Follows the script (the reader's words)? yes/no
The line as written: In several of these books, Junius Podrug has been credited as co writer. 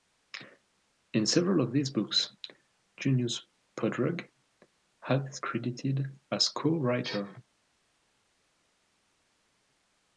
no